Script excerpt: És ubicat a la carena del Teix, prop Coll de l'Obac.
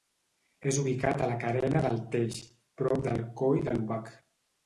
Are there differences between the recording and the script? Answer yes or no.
yes